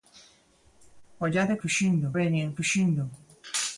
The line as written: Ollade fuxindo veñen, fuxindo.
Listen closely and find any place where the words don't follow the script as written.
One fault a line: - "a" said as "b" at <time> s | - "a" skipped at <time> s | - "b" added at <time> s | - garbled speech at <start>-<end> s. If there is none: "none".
none